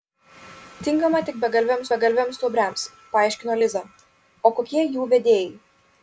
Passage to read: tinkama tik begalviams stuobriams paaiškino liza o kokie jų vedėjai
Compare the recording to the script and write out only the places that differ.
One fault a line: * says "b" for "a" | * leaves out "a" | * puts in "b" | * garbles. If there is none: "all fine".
* puts in "begalviams"